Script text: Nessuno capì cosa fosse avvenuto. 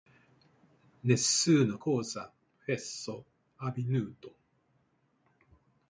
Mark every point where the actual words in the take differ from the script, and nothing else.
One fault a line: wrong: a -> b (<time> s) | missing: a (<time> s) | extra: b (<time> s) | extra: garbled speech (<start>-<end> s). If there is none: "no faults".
missing: capì (1.8 s)